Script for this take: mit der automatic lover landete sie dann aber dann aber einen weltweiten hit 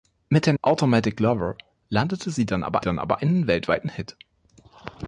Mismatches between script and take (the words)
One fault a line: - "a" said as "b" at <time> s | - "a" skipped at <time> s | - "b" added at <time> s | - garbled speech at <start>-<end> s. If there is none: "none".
none